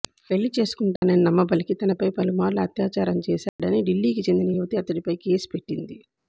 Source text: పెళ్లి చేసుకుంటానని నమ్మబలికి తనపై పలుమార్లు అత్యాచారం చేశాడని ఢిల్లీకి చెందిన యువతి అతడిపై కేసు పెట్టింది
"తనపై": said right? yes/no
yes